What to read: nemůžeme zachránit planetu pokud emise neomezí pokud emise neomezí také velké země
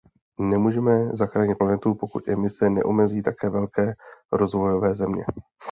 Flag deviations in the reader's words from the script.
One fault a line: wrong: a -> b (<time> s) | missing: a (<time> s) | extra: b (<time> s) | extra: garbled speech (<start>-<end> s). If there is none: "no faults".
missing: pokud emise neomezí (3.2 s)
extra: rozvojové (4.3 s)